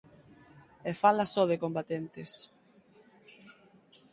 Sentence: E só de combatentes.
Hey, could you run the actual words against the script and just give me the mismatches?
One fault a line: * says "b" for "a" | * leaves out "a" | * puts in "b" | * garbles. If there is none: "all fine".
* puts in "fala"